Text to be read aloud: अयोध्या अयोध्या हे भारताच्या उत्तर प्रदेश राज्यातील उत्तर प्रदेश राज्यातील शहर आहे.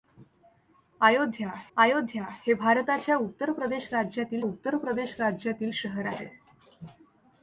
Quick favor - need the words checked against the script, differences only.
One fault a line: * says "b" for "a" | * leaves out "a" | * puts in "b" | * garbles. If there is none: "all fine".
all fine